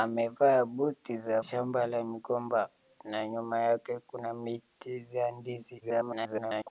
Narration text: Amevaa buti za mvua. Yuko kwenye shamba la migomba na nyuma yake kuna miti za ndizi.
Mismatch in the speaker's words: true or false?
true